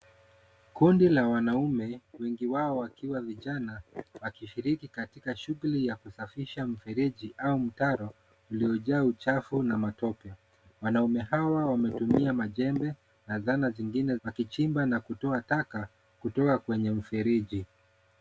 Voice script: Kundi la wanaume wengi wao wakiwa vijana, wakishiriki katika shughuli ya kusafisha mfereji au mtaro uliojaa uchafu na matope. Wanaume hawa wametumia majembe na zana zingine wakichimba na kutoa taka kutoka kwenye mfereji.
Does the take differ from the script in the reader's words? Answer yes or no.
no